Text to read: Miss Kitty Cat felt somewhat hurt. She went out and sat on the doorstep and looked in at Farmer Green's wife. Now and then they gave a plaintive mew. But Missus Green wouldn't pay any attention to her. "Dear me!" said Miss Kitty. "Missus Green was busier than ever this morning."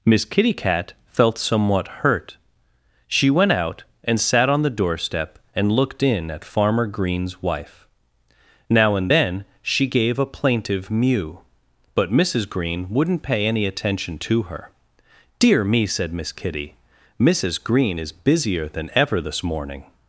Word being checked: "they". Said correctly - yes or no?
no